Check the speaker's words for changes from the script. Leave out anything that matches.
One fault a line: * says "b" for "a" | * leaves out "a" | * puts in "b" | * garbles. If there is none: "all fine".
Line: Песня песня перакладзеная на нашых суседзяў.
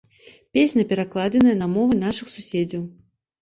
* leaves out "песня"
* puts in "мовы"